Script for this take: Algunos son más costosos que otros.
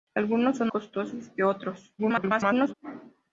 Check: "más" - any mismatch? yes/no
yes